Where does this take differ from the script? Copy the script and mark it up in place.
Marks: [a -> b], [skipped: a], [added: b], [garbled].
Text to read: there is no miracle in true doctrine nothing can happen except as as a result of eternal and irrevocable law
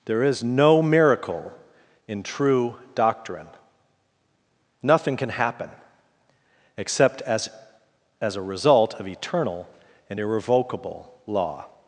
there is no miracle in true doctrine nothing can happen except as as a result of eternal and irrevocable law